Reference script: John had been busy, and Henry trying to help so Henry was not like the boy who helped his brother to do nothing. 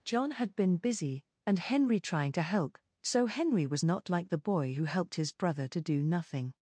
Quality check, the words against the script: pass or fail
pass